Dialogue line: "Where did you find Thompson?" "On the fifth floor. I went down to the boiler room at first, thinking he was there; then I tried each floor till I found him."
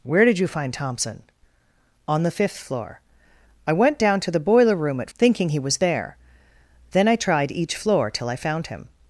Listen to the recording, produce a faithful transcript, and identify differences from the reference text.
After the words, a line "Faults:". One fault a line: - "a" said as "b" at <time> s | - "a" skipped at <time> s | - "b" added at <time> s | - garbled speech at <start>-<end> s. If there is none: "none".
"Where did you find Thompson?" "On the fifth floor. I went down to the boiler room at thinking he was there; then I tried each floor till I found him."
Faults:
- "first" skipped at 5.1 s